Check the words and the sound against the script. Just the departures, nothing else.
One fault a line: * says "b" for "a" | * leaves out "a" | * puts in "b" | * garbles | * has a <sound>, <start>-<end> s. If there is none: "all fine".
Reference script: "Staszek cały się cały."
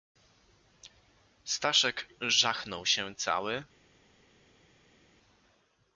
* says "żachnął" for "cały"